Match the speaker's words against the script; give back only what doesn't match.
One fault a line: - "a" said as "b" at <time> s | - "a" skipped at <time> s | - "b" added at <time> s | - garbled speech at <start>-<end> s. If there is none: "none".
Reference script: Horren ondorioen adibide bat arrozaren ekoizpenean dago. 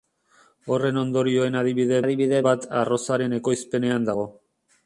- "adibide" added at 2.0 s